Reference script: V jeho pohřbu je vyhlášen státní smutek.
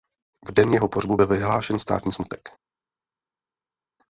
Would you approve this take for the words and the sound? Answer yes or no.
no